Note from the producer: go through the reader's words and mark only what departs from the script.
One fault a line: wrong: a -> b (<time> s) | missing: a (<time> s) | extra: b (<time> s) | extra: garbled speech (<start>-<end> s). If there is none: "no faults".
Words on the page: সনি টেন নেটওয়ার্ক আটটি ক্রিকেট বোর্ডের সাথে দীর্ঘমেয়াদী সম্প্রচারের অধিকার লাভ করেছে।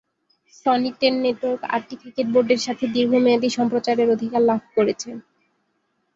no faults